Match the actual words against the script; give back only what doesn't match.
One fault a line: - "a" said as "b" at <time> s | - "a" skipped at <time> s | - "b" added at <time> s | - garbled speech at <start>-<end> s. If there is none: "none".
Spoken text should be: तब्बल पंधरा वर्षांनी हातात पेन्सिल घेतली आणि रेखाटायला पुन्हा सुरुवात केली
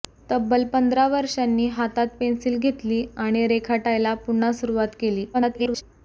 - garbled speech at 5.3-5.8 s